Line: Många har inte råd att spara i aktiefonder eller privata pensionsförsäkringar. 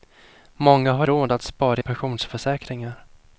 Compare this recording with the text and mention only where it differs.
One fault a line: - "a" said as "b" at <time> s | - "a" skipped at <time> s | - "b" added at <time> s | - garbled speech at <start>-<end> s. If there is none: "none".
- "inte" skipped at 1.1 s
- "aktiefonder eller privata" skipped at 1.8 s